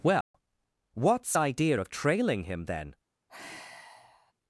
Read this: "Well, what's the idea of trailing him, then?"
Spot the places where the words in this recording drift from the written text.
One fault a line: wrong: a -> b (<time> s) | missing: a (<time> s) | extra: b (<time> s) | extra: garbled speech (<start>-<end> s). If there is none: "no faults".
missing: the (1.4 s)